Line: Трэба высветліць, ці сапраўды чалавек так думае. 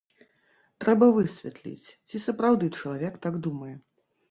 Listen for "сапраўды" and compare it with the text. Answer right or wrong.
right